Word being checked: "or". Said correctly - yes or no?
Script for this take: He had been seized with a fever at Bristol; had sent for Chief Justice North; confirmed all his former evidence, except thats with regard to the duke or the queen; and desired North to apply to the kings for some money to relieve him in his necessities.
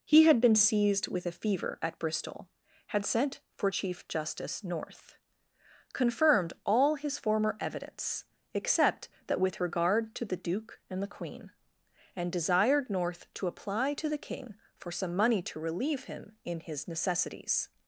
no